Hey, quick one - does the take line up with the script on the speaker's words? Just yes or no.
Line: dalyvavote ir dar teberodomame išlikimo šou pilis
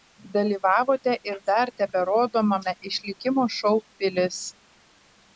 yes